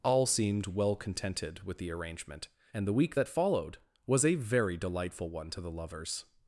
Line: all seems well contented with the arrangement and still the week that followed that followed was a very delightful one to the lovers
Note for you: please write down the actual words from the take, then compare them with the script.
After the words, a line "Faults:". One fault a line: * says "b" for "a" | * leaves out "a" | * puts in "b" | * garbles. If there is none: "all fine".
all seemed well contented with the arrangement and the week that followed was a very delightful one to the lovers
Faults:
* says "seemed" for "seems"
* leaves out "still"
* leaves out "that followed"